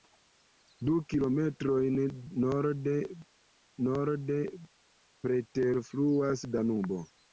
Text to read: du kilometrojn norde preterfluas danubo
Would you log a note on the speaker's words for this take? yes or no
yes